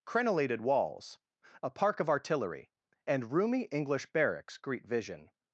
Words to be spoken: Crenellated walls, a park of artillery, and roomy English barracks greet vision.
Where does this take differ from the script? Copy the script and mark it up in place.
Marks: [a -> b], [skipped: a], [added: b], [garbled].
Crenellated walls, a park of artillery, and roomy English barracks greet vision.